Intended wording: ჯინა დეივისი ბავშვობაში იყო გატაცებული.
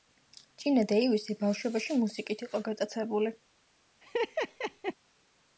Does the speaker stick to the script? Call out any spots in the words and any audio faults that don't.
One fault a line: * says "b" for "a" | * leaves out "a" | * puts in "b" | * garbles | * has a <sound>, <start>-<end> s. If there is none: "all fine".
* puts in "მუსიკით"
* has a laugh, 4.0-4.9 s